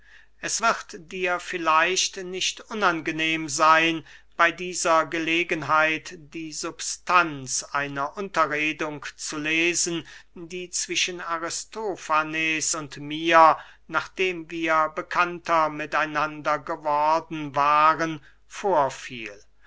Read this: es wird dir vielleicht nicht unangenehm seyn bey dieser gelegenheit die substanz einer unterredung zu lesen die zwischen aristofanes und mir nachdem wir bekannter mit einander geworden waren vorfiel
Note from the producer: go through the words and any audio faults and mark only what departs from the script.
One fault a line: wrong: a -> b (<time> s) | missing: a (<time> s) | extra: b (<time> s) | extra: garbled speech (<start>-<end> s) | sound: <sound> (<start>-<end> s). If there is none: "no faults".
no faults